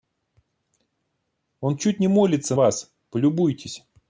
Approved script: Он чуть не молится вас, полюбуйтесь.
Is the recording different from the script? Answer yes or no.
no